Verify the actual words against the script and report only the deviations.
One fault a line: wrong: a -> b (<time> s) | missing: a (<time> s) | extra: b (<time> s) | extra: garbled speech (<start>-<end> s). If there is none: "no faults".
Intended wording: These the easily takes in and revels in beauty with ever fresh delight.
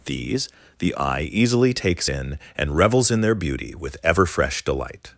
extra: eye (0.9 s)
extra: their (3.2 s)